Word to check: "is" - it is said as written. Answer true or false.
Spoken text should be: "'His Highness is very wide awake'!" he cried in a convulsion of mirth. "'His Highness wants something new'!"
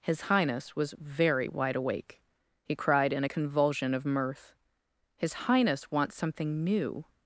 false